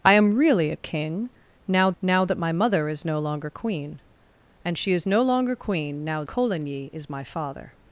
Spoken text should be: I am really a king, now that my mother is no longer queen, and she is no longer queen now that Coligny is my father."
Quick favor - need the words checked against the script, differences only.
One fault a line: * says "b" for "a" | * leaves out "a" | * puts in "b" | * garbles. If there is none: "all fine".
* puts in "now"
* leaves out "that"